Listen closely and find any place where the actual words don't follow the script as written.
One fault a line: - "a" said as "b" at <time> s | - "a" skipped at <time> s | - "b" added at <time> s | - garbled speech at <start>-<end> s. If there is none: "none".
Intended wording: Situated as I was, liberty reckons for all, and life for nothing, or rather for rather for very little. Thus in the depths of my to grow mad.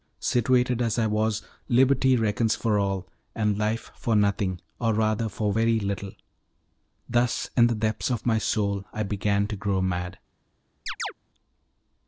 - "rather for" skipped at 5.5 s
- "soul I began" added at 8.4 s